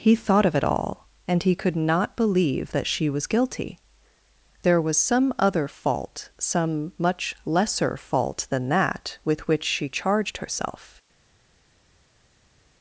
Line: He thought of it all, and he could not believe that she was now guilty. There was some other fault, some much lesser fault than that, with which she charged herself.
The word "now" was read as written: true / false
false